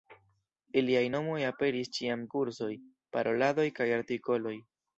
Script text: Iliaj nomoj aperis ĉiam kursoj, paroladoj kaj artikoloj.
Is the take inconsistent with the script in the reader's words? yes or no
no